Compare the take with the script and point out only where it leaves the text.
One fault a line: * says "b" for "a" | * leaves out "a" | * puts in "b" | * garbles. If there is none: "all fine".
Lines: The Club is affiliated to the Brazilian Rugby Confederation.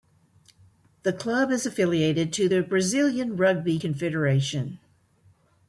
all fine